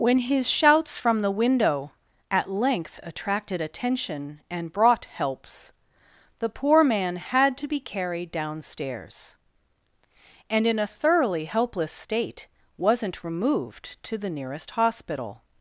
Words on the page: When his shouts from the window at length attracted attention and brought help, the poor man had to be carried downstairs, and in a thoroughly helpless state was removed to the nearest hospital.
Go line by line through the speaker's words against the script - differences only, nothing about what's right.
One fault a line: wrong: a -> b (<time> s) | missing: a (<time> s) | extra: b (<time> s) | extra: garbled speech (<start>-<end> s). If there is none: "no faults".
wrong: help -> helps (5.0 s)
wrong: was -> wasn't (12.8 s)